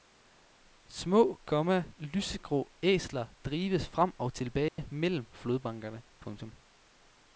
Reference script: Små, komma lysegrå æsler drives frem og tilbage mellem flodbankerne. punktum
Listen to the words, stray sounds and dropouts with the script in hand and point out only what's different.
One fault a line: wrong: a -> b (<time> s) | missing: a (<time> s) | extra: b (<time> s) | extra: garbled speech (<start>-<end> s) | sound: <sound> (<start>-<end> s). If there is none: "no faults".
sound: dropout (4.7-4.8 s)